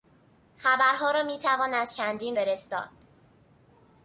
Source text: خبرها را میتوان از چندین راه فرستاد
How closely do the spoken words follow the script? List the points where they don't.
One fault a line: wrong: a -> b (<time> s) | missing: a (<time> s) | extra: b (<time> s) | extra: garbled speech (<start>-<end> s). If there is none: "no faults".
missing: راه (2.4 s)